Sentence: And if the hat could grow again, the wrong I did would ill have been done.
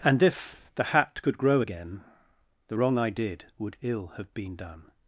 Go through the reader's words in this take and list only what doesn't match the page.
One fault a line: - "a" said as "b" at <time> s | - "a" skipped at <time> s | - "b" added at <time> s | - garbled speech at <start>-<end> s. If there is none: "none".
none